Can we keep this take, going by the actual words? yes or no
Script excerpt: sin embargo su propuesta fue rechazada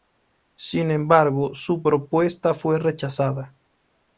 yes